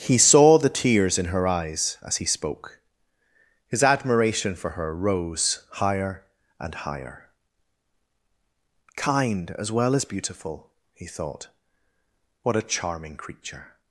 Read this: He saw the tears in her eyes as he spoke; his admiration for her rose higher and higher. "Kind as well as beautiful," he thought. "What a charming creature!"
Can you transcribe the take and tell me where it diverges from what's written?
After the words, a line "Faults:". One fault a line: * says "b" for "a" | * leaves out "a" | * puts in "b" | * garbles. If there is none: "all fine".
He saw the tears in her eyes as he spoke; his admiration for her rose higher and higher. "Kind as well as beautiful," he thought. "What a charming creature!"
Faults:
all fine